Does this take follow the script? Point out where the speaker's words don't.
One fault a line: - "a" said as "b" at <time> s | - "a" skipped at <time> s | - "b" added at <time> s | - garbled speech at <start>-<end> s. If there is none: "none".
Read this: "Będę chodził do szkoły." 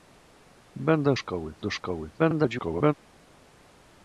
- "chodził" said as "szkoły" at 1.1 s
- garbled speech at 2.2-2.9 s